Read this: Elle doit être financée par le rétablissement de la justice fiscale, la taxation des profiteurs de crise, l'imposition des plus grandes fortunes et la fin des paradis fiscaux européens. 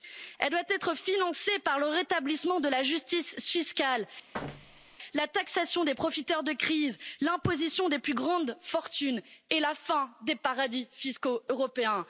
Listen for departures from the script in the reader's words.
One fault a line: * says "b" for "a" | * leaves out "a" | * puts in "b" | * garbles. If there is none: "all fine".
all fine